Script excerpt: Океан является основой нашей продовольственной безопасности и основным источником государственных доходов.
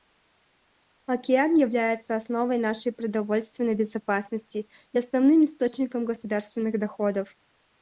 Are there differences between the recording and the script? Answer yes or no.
no